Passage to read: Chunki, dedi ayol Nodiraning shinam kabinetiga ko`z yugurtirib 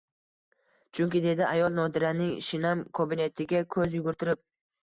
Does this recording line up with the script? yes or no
yes